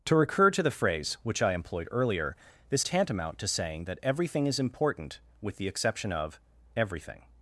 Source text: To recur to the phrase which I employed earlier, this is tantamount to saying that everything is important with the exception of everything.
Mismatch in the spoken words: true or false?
true